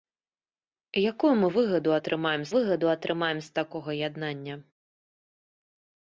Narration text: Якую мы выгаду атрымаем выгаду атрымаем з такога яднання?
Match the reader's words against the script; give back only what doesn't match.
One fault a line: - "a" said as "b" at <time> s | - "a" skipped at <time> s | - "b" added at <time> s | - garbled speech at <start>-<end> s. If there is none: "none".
none